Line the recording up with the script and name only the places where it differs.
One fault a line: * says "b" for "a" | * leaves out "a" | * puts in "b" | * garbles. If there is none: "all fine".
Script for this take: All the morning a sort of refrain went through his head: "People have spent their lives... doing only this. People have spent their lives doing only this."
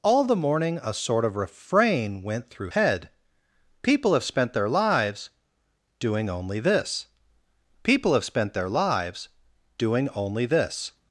* leaves out "his"